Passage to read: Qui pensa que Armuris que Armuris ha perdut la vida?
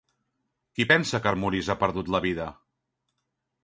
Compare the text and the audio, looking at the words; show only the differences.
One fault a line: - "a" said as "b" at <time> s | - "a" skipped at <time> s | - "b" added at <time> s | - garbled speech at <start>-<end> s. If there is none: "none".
- "que Armuris" skipped at 1.7 s